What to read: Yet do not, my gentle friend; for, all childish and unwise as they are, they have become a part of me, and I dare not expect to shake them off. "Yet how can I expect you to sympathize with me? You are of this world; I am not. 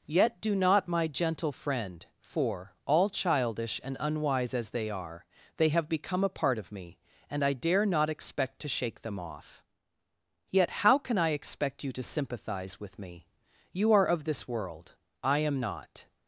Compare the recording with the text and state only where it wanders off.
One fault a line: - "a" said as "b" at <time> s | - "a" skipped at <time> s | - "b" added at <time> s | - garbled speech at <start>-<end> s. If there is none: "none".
none